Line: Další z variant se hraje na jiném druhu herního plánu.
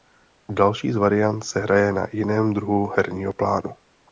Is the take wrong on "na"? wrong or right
right